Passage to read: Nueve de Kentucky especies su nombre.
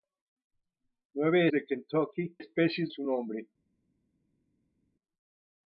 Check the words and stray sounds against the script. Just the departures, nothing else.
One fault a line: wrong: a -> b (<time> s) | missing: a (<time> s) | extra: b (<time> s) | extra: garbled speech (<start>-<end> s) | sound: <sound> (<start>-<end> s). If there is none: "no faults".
no faults